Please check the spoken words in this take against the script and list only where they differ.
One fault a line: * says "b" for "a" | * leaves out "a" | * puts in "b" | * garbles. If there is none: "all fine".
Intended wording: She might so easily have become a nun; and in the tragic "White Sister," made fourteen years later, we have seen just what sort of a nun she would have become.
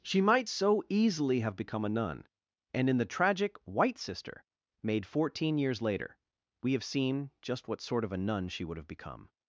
all fine